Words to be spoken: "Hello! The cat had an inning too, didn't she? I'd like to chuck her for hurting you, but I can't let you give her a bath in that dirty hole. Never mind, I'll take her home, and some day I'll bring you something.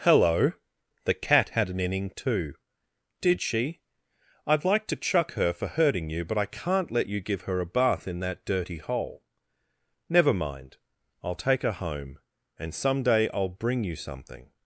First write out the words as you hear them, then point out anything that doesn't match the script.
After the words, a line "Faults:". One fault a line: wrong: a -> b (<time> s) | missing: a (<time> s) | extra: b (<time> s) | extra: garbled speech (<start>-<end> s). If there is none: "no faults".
"Hello! The cat had an inning too, did she? I'd like to chuck her for hurting you, but I can't let you give her a bath in that dirty hole. Never mind, I'll take her home, and some day I'll bring you something.
Faults:
wrong: didn't -> did (3.2 s)